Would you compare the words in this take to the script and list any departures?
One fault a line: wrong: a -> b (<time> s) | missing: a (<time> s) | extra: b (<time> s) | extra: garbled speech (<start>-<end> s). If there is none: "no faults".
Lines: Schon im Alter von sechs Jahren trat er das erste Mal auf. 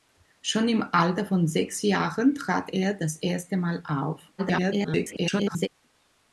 extra: garbled speech (4.4-5.7 s)